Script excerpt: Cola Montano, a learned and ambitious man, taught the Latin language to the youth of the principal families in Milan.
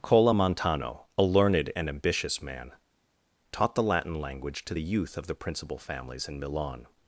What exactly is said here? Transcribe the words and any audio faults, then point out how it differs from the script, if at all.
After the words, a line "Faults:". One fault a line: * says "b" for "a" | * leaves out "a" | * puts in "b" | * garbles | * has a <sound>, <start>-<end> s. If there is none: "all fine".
Cola Montano, a learned and ambitious man, taught the Latin language to the youth of the principal families in Milan.
Faults:
all fine